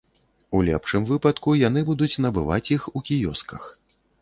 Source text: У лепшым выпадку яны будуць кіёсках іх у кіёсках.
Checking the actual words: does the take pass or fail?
fail